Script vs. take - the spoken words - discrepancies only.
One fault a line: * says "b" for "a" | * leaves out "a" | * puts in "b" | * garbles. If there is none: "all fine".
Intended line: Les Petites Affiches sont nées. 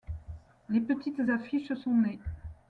all fine